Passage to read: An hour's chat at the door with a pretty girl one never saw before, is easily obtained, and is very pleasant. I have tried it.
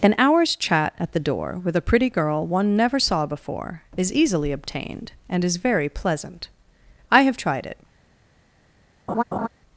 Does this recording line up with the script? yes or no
yes